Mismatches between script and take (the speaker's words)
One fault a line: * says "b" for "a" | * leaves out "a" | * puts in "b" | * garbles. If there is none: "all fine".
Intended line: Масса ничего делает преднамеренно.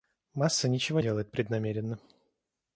all fine